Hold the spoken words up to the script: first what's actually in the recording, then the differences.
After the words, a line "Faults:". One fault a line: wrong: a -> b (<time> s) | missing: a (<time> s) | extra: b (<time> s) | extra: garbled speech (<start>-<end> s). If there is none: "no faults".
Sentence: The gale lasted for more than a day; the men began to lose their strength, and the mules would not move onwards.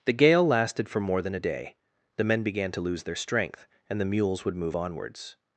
The gale lasted for more than a day; the men began to lose their strength, and the mules would move onwards.
Faults:
missing: not (4.5 s)